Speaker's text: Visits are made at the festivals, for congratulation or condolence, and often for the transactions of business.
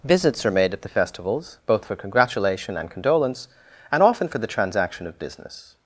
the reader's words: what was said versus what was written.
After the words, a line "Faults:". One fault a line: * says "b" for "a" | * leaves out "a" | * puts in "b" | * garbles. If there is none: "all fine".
Visits are made at the festivals, both for congratulation and condolence, and often for the transaction of business.
Faults:
* puts in "both"
* says "and" for "or"
* says "transaction" for "transactions"